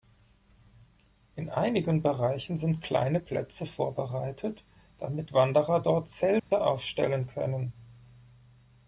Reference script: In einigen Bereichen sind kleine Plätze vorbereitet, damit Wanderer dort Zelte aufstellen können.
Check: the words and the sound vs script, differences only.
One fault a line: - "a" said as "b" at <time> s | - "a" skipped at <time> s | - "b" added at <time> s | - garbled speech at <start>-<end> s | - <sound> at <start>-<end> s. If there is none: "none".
- dropout at 6.4-6.5 s